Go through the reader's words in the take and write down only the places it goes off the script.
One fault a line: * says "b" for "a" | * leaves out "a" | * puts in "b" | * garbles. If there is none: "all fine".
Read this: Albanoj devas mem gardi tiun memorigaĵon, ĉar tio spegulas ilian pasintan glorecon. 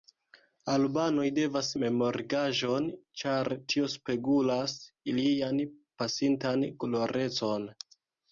* leaves out "mem gardi tiun"